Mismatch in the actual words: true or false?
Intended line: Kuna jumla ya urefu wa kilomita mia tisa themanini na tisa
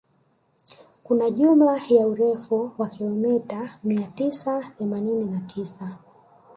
false